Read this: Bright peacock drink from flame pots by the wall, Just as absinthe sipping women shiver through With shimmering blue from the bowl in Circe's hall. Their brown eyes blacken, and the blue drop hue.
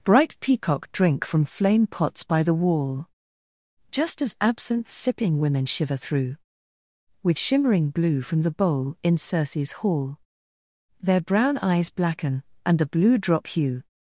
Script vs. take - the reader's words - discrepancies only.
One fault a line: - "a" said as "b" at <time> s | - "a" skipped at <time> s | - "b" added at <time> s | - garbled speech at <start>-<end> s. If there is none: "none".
none